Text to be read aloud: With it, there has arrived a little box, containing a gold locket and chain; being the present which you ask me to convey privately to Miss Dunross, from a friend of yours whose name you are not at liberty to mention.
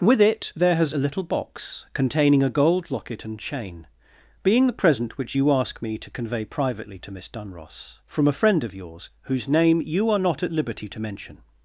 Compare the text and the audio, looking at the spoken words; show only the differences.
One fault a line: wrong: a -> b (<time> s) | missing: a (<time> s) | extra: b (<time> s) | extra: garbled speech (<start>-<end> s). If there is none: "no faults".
missing: arrived (0.9 s)